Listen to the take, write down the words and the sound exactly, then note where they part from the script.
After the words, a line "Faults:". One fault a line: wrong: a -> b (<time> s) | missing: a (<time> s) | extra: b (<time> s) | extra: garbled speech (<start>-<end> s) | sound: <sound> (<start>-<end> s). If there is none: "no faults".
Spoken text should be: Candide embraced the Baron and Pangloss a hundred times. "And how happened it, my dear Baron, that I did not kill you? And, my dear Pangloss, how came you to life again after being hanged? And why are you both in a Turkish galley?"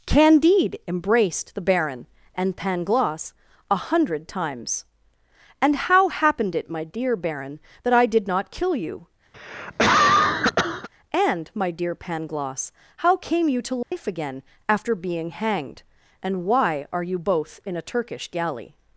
Candide embraced the Baron and Pangloss a hundred times. "And how happened it, my dear Baron, that I did not kill you? And, my dear Pangloss, how came you to life again after being hanged? And why are you both in a Turkish galley?"
Faults:
sound: cough (9.3-10.9 s)
sound: dropout (13.8-13.9 s)